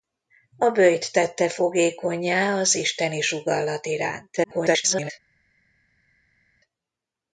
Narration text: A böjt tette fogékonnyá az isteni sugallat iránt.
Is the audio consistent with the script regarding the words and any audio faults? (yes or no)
no